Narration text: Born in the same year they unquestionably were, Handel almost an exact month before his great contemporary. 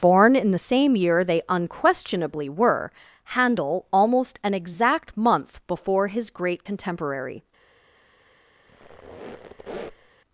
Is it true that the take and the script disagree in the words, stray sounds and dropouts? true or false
true